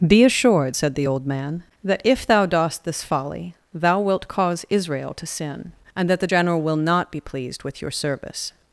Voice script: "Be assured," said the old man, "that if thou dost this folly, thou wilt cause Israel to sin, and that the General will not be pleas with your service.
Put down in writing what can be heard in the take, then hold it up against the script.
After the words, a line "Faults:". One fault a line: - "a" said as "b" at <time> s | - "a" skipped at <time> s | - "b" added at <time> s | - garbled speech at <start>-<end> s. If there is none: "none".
"Be assured," said the old man, "that if thou dost this folly, thou wilt cause Israel to sin, and that the General will not be pleased with your service.
Faults:
- "pleas" said as "pleased" at 7.2 s